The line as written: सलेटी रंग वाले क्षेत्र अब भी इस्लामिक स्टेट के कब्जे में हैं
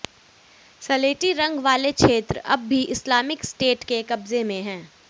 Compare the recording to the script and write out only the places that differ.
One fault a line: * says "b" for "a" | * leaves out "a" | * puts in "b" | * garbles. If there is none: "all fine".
all fine